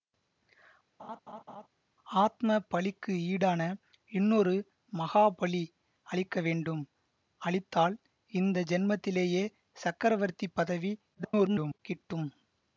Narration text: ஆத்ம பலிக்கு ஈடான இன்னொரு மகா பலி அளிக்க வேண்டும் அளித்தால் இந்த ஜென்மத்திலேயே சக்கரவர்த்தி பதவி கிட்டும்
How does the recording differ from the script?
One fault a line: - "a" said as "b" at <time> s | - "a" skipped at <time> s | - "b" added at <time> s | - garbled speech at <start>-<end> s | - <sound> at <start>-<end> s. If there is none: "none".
- laugh at 1.0-1.7 s
- garbled speech at 11.1-11.8 s